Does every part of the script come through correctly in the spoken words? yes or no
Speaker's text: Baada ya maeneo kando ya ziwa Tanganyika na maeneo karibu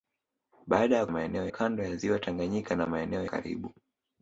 yes